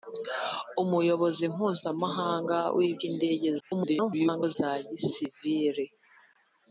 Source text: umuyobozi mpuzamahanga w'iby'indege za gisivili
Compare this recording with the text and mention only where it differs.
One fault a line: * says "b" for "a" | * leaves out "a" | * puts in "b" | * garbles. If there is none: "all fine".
* garbles